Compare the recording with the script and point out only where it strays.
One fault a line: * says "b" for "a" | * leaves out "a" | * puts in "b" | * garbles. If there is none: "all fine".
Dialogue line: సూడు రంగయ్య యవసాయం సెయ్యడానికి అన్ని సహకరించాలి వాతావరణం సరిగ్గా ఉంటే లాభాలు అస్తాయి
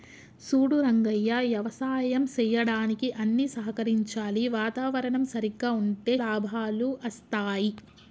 all fine